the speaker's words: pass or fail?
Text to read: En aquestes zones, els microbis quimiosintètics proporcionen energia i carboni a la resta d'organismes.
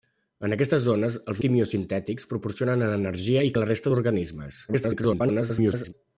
fail